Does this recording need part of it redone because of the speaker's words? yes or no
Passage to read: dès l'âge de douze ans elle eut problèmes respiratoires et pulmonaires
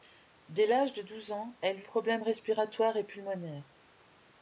no